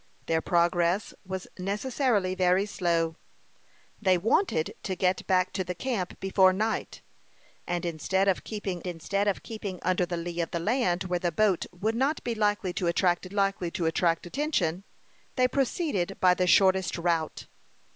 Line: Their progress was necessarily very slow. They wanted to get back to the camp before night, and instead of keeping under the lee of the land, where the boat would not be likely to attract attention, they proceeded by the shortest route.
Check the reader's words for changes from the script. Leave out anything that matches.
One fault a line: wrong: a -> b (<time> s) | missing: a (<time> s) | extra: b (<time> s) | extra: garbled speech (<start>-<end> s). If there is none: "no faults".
extra: instead of keeping (8.9 s)
extra: likely to attract (13.3 s)